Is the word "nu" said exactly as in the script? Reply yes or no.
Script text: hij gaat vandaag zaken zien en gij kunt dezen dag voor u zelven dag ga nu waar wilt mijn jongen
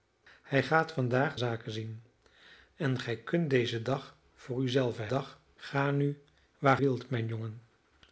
yes